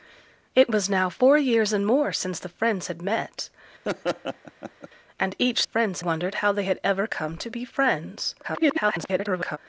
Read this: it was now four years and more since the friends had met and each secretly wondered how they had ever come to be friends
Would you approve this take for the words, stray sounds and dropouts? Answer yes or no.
no